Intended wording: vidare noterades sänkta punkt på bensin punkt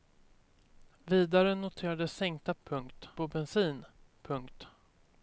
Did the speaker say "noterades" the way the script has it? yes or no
yes